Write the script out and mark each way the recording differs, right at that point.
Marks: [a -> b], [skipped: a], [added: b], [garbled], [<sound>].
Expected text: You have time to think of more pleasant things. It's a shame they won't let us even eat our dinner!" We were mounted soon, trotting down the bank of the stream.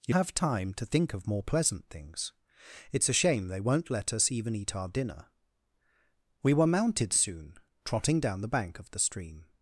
You have time to think of more pleasant things. It's a shame they won't let us even eat our dinner!" We were mounted soon, trotting down the bank of the stream.